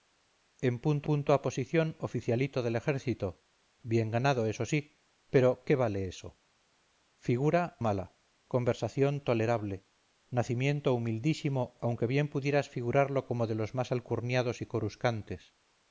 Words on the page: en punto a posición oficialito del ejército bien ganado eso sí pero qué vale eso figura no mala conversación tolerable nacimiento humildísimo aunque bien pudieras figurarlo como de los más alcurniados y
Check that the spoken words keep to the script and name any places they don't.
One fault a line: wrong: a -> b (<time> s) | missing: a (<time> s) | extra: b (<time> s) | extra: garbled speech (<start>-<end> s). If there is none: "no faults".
extra: punto (1.1 s)
missing: no (7.8 s)